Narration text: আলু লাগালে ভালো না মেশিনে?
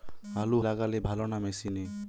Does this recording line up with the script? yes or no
yes